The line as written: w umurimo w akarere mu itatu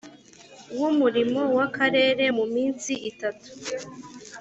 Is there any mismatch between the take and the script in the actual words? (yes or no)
yes